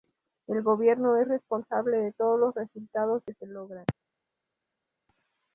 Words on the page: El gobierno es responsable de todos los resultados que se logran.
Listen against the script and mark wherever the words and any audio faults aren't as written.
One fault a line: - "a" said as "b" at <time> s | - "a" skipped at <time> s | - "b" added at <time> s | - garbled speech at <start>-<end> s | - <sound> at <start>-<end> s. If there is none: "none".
none